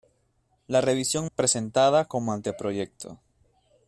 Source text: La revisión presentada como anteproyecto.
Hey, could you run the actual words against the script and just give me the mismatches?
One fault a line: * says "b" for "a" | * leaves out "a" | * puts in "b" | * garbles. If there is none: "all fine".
all fine